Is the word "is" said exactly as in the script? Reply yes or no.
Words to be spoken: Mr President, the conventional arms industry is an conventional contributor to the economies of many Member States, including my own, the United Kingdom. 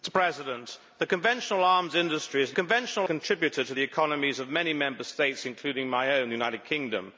yes